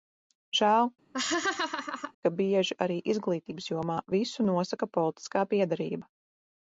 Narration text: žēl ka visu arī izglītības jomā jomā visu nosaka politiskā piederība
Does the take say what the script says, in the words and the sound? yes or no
no